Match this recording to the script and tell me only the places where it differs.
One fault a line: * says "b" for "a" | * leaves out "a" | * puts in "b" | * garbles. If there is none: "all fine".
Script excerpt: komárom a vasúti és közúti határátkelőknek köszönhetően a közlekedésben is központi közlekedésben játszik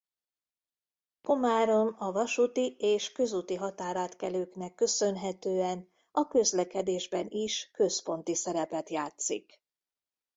* says "szerepet" for "közlekedésben"